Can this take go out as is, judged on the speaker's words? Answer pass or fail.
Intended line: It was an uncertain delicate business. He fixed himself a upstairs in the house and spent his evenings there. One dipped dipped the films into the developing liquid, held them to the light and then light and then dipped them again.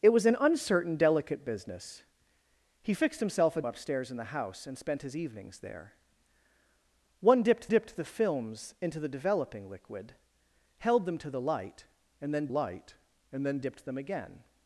pass